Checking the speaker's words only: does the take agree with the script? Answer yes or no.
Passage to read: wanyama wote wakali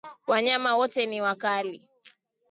no